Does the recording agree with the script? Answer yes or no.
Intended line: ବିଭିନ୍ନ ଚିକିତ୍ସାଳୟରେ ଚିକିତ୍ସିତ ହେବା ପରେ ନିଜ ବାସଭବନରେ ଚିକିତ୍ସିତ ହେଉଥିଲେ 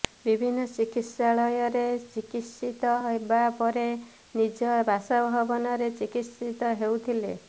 yes